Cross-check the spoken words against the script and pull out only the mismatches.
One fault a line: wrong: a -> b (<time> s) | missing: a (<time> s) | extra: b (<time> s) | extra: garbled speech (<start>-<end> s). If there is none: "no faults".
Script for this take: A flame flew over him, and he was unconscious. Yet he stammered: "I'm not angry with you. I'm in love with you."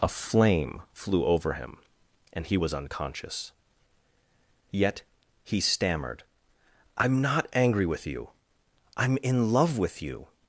no faults